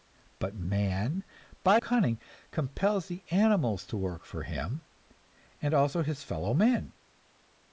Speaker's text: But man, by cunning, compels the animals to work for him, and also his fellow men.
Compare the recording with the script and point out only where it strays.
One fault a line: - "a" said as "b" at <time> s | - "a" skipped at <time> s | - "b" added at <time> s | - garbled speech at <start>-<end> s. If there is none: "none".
none